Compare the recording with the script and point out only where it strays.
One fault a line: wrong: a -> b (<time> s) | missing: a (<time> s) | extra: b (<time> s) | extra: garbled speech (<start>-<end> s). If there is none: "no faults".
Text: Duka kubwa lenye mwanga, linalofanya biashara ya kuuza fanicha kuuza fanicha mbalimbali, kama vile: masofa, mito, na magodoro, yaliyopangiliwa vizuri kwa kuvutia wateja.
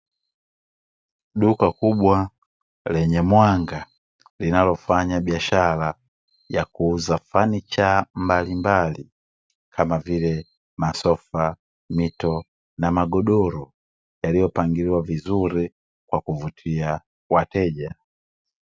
missing: kuuza fanicha (8.1 s)